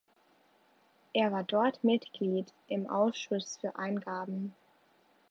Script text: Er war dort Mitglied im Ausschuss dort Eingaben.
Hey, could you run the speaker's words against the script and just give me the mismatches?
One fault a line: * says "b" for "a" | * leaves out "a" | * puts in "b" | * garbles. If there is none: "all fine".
* says "für" for "dort"